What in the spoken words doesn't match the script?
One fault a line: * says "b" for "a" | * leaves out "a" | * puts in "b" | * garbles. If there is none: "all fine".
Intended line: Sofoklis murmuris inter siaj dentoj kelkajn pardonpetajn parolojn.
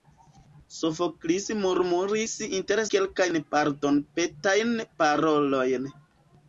* leaves out "siaj dentoj"